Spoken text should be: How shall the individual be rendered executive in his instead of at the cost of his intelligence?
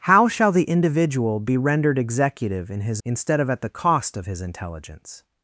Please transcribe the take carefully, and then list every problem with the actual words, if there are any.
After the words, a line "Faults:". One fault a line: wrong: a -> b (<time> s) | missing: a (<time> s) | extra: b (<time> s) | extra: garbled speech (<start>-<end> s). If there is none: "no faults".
How shall the individual be rendered executive in his instead of at the cost of his intelligence?
Faults:
no faults